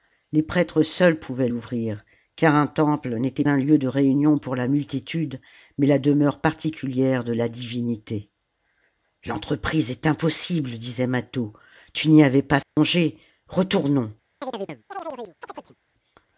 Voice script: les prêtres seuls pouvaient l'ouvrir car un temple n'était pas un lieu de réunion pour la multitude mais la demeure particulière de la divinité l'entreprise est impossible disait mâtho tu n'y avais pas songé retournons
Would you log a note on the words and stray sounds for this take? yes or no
yes